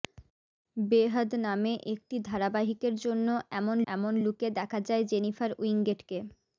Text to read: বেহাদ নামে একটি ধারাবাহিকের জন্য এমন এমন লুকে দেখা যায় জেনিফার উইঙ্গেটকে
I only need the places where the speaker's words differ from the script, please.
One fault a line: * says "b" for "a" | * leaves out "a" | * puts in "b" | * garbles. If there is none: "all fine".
all fine